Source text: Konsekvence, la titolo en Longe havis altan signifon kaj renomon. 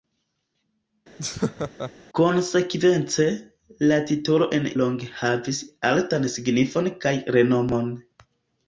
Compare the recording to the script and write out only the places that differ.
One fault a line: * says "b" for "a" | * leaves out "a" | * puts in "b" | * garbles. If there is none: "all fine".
all fine